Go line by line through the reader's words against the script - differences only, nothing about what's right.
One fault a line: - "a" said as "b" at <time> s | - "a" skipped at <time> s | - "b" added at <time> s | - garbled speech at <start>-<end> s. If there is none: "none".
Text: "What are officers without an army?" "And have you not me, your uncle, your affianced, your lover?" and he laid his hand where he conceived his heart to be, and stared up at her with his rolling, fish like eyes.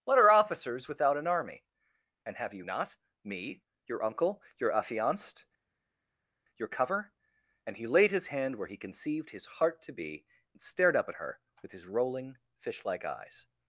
- "lover" said as "cover" at 6.7 s